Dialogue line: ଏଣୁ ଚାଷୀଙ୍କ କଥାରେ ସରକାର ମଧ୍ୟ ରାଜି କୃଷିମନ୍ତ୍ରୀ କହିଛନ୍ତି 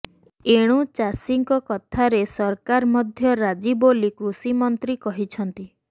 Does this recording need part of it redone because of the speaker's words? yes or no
yes